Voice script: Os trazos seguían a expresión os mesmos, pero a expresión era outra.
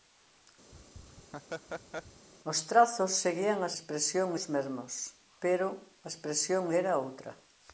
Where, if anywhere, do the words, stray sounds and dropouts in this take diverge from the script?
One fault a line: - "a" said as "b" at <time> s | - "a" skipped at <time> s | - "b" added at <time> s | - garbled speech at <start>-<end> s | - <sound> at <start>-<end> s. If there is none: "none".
- laugh at 0.7-2.3 s